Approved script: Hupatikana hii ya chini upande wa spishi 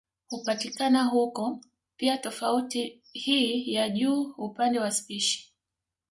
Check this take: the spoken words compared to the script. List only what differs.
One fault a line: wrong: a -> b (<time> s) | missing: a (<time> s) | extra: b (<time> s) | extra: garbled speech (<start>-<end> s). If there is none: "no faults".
extra: huko pia tofauti (1.0 s)
wrong: chini -> juu (3.9 s)